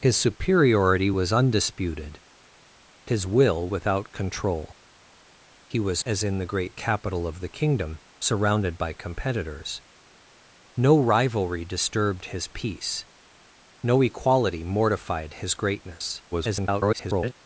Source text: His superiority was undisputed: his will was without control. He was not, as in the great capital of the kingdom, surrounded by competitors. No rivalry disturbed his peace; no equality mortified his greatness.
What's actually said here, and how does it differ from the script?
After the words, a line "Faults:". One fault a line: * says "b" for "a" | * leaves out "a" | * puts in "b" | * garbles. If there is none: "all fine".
His superiority was undisputed: his will without control. He was as in the great capital of the kingdom, surrounded by competitors. No rivalry disturbed his peace; no equality mortified his greatness. [garbled]
Faults:
* leaves out "was"
* leaves out "not"
* garbles